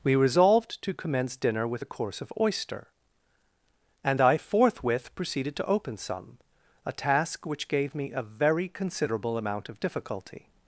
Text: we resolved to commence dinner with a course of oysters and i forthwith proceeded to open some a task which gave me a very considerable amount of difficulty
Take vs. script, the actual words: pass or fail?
fail